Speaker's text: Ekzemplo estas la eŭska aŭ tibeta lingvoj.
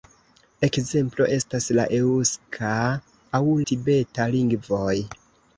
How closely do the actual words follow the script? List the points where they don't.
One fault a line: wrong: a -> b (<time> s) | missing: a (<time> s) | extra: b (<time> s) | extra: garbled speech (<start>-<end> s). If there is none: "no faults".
no faults